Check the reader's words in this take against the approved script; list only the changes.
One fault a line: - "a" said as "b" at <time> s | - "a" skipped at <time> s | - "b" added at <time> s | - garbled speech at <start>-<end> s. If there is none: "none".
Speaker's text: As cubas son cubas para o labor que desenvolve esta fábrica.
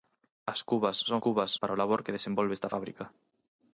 none